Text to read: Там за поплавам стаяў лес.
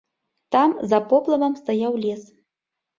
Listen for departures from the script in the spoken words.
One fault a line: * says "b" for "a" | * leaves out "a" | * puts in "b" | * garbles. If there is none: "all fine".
all fine